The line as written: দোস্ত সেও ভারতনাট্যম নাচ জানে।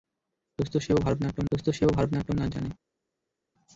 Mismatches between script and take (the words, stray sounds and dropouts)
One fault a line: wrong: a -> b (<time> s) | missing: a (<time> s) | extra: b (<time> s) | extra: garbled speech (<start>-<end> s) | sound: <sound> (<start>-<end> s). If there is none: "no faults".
extra: দোস্ত সেও ভারতনাট্যম (1.5 s)